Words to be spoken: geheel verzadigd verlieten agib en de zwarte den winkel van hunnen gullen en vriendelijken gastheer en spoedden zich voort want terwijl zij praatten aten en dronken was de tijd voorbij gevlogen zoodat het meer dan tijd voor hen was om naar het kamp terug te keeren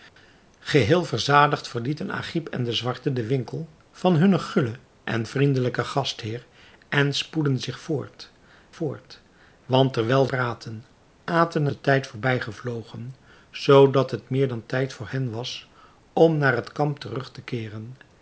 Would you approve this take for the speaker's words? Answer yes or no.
no